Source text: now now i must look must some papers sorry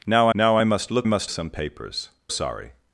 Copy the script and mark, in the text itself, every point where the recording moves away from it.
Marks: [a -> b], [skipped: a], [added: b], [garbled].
now now i must look must some papers sorry